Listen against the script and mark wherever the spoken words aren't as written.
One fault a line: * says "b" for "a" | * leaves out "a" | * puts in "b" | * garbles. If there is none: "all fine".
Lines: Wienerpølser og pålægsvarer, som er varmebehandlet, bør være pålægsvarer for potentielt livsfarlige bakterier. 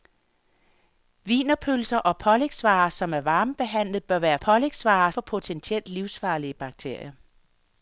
all fine